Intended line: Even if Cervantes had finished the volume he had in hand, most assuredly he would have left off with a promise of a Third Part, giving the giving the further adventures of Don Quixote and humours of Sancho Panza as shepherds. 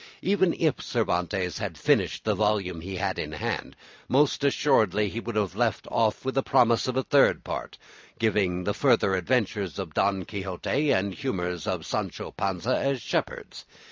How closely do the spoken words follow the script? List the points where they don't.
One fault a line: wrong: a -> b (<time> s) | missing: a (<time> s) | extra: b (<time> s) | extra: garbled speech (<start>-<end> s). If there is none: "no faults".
missing: giving the (8.8 s)